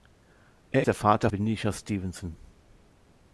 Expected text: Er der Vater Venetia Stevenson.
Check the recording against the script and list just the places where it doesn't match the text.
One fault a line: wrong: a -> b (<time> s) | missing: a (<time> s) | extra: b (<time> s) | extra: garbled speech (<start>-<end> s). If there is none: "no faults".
no faults